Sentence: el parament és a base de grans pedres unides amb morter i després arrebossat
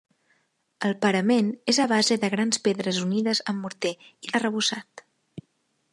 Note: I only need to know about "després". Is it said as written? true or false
false